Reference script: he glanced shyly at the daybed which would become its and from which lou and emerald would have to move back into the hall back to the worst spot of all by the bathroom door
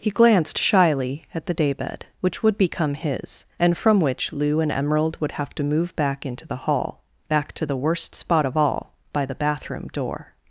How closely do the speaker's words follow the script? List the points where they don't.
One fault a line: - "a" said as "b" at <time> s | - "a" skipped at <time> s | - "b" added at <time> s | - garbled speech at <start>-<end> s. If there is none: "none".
- "its" said as "his" at 3.0 s